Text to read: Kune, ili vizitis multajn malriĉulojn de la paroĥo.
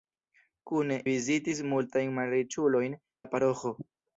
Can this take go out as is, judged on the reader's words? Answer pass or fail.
fail